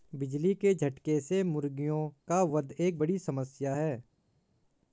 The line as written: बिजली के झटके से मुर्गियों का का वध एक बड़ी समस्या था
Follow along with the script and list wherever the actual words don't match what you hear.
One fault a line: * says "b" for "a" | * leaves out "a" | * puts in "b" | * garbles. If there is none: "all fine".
* leaves out "का"
* says "है" for "था"